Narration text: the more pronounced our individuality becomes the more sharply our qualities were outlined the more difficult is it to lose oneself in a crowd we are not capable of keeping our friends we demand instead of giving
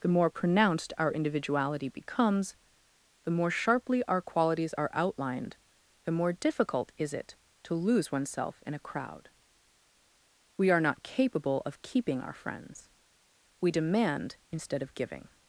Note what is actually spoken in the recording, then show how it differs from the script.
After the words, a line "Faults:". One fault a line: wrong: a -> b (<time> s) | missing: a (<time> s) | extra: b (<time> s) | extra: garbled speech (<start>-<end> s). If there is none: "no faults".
the more pronounced our individuality becomes the more sharply our qualities are outlined the more difficult is it to lose oneself in a crowd we are not capable of keeping our friends we demand instead of giving
Faults:
wrong: were -> are (4.8 s)